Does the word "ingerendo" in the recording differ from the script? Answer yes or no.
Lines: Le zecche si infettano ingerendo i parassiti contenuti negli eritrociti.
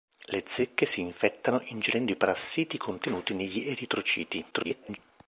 no